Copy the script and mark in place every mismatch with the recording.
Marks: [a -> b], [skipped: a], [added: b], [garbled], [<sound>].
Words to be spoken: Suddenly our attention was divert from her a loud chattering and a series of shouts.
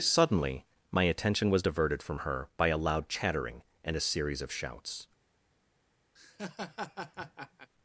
Suddenly [our -> my] attention was [divert -> diverted] from her [added: by] a loud chattering and a series of shouts. [laugh]